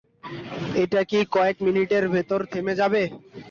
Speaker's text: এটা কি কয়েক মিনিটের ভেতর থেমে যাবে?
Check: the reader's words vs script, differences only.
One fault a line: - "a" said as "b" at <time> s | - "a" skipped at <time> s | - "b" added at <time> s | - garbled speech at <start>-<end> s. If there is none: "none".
none